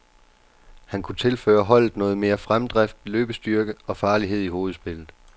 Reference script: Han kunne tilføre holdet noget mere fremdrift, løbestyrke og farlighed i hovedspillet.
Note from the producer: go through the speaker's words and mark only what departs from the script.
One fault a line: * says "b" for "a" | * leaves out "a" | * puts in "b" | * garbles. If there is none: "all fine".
all fine